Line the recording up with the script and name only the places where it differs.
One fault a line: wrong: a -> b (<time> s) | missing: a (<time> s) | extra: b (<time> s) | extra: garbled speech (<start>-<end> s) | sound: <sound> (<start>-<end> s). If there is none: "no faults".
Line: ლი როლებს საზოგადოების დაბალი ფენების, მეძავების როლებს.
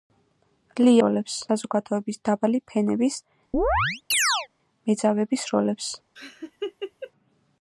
sound: chirp (3.5-4.5 s)
sound: laugh (6.2-7.1 s)